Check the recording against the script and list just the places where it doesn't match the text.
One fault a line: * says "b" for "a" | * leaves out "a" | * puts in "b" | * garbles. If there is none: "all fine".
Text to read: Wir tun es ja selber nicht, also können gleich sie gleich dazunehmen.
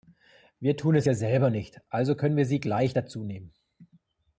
* says "wir" for "gleich"